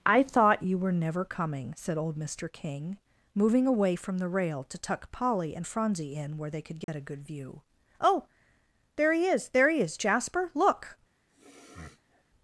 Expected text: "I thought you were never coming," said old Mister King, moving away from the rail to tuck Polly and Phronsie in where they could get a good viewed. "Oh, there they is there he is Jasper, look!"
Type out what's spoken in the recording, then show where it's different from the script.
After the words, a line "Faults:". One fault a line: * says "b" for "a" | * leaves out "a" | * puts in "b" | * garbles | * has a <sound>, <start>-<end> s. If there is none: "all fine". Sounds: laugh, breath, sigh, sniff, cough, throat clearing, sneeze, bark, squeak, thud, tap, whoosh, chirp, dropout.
"I thought you were never coming," said old Mister King, moving away from the rail to tuck Polly and Phronsie in where they could get a good view. "Oh, there he is there he is Jasper, look!"
Faults:
* has a dropout, 6.8-6.9 s
* says "view" for "viewed"
* says "he" for "they"
* has a sniff, 11.3-12.2 s